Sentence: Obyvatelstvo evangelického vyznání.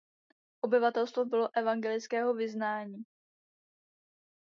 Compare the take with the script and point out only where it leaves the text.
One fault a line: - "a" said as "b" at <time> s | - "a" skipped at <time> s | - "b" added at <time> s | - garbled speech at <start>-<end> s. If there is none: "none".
- "bylo" added at 1.2 s